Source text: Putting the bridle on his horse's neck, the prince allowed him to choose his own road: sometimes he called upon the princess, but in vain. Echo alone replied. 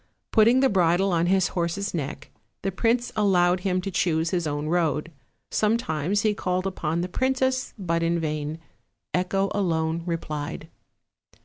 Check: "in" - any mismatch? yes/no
no